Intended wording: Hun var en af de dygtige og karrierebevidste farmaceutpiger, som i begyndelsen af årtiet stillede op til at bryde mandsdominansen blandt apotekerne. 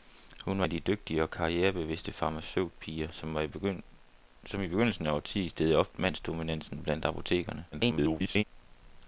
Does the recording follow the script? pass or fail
fail